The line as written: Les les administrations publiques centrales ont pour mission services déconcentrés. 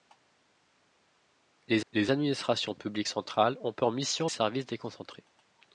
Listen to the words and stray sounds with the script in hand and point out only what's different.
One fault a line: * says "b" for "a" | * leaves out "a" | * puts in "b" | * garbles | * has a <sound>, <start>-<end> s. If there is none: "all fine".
all fine